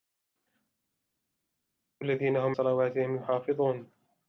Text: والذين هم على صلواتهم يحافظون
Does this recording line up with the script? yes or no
no